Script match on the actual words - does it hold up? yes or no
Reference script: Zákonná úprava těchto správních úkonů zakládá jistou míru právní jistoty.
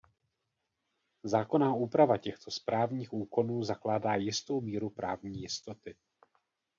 yes